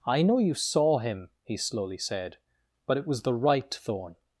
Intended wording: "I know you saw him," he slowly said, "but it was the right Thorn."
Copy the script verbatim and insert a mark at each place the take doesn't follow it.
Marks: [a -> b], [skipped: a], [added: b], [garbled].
"I know you saw him," he slowly said, "but it was the right Thorn."